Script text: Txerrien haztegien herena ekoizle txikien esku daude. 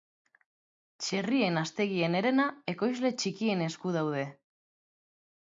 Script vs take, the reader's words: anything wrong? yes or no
no